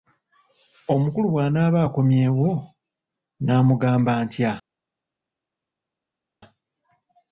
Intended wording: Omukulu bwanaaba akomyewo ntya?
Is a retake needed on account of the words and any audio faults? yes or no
yes